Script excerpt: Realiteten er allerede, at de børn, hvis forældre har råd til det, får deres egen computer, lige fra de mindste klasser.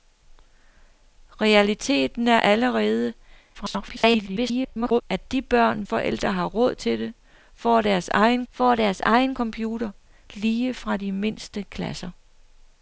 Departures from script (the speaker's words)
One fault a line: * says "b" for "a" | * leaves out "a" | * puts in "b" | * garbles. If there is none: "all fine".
* garbles
* leaves out "hvis"
* puts in "får deres egen"